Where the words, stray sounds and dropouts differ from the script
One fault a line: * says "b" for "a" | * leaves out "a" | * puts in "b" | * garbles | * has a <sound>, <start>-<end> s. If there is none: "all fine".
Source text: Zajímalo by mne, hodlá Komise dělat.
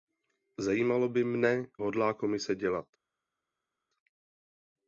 all fine